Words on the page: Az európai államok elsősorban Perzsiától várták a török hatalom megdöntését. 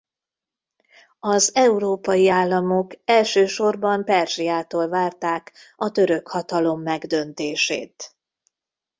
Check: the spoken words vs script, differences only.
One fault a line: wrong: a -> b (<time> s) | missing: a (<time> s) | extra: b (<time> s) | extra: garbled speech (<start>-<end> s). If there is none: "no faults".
no faults